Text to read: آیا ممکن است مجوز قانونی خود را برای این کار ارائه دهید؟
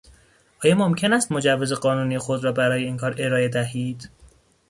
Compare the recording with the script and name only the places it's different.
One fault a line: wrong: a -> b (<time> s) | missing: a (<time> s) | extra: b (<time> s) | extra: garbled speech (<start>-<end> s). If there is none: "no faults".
no faults